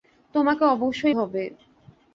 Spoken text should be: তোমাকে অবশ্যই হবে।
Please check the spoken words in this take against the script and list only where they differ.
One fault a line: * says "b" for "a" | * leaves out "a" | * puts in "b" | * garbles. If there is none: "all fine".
all fine